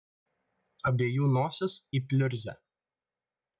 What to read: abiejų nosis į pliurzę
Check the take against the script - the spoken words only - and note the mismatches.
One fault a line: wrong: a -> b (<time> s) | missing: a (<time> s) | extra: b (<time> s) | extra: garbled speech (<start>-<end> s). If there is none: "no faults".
no faults